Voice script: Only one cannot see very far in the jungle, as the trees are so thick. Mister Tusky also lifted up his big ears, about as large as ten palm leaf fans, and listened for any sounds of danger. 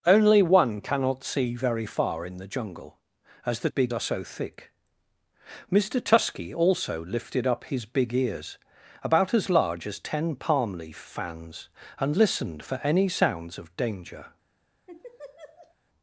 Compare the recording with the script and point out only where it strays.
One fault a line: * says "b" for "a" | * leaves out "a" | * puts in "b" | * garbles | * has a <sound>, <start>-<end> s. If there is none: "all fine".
* says "big" for "trees"
* has a laugh, 14.9-15.8 s